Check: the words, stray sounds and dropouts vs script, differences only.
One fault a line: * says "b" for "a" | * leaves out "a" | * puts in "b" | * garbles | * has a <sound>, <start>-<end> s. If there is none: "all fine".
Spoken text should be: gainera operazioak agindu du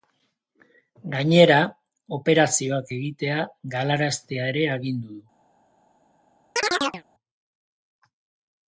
* puts in "egitea galaraztea ere"
* has a chirp, 6.6-7.0 s